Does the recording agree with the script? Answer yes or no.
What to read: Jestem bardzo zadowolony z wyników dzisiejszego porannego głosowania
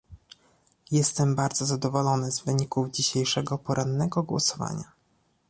yes